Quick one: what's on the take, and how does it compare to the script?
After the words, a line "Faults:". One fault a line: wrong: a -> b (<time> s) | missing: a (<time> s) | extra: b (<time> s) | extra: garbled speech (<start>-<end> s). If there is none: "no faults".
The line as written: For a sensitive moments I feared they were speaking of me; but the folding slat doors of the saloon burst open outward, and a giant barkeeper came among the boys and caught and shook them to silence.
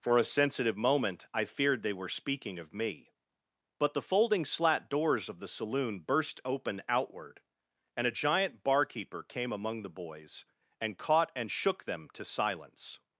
For a sensitive moment I feared they were speaking of me; but the folding slat doors of the saloon burst open outward, and a giant barkeeper came among the boys and caught and shook them to silence.
Faults:
wrong: moments -> moment (0.8 s)